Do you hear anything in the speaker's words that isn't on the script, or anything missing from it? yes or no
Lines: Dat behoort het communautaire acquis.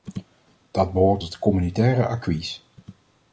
no